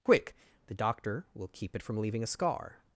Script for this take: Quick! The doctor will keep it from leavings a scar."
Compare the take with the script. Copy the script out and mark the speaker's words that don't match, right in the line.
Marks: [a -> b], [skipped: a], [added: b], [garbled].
Quick! The doctor will keep it from [leavings -> leaving] a scar."